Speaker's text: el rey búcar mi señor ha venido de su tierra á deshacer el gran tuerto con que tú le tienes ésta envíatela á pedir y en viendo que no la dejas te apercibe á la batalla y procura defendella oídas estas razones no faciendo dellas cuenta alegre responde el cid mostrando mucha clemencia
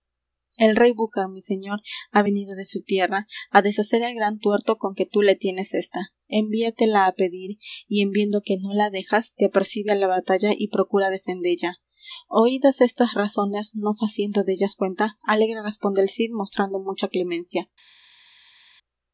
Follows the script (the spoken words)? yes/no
yes